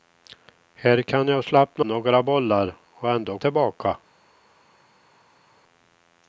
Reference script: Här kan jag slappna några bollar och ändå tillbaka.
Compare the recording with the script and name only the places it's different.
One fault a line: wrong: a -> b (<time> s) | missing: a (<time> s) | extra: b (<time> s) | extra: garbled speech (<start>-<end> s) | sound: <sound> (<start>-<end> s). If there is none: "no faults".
no faults